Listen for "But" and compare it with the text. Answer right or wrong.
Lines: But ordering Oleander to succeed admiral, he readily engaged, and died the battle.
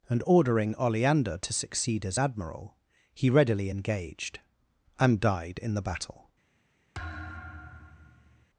wrong